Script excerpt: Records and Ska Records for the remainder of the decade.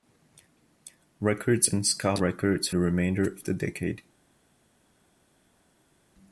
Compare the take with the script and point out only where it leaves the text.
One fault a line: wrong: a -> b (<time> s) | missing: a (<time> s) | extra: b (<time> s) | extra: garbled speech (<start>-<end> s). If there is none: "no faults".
missing: for (2.7 s)